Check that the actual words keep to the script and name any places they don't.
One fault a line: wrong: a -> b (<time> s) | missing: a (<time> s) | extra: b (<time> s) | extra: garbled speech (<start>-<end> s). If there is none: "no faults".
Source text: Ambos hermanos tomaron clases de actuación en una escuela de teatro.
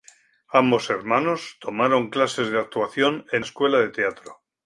missing: una (3.5 s)